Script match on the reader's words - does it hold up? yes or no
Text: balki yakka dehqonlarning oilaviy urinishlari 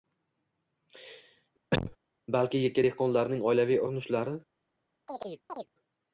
yes